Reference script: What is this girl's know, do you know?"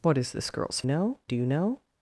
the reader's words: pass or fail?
pass